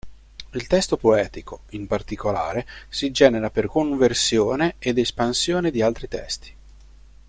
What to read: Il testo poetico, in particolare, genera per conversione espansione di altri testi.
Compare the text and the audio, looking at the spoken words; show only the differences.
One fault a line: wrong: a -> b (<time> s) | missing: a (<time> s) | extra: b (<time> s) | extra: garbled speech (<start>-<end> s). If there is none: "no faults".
extra: si (2.9 s)
extra: ed (4.8 s)